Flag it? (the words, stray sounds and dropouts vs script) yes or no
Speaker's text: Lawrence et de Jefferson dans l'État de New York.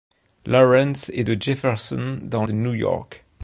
yes